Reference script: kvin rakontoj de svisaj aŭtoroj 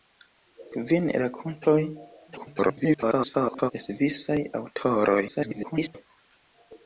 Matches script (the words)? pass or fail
fail